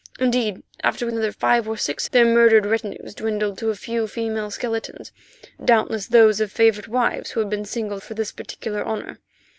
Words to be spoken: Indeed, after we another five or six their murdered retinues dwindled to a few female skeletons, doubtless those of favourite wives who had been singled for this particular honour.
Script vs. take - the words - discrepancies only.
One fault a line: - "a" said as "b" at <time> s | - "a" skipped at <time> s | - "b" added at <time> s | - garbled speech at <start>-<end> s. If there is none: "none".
none